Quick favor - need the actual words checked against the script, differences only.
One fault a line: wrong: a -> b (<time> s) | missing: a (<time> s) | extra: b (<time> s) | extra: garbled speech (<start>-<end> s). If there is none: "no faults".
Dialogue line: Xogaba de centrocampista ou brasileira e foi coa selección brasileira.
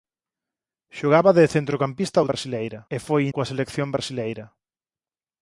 no faults